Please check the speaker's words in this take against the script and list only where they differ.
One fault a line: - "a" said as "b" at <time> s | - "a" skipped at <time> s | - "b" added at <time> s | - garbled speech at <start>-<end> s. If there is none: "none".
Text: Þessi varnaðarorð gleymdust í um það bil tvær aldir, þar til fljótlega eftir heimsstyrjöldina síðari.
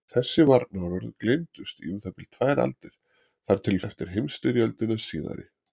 - "fljótlega" skipped at 3.8 s